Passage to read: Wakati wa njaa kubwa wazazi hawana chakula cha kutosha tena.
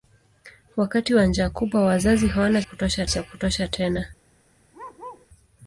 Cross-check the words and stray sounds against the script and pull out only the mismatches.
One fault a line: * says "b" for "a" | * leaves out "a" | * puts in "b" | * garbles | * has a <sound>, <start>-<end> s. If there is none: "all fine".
* says "kutosha" for "chakula"
* has a bark, 4.7-5.3 s